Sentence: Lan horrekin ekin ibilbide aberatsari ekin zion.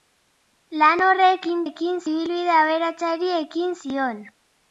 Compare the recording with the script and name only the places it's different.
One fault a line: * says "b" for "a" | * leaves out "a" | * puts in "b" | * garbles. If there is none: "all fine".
all fine